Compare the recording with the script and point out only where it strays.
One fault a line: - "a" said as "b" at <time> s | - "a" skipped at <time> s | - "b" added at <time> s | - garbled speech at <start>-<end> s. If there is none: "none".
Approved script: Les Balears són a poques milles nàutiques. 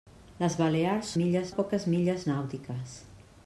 - "són" said as "milles" at 1.2 s